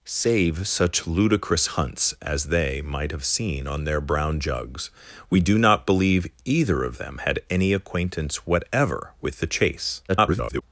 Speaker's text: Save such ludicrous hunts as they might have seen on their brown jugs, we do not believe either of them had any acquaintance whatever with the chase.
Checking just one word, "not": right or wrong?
right